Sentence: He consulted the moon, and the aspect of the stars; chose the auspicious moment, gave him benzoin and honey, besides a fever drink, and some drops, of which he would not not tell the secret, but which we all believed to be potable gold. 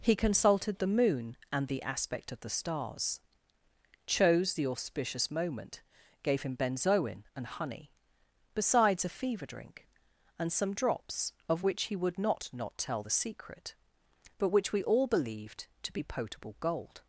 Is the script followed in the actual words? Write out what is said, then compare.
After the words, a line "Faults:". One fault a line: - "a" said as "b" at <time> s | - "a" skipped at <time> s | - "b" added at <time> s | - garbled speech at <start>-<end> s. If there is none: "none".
He consulted the moon, and the aspect of the stars; chose the auspicious moment, gave him benzoin and honey, besides a fever drink, and some drops, of which he would not not tell the secret, but which we all believed to be potable gold.
Faults:
none